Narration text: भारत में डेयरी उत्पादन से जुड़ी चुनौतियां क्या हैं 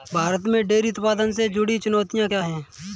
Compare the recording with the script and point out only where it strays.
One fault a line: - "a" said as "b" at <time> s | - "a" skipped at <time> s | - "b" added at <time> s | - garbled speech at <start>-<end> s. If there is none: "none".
none